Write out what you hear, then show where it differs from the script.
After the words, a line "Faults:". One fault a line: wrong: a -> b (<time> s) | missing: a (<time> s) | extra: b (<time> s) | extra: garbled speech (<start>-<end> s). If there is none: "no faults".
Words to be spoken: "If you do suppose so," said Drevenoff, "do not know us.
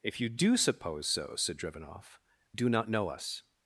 "If you do suppose so," said Drevenoff, "do not know us.
Faults:
no faults